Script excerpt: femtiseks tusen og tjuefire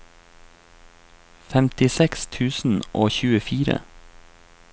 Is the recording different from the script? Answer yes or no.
no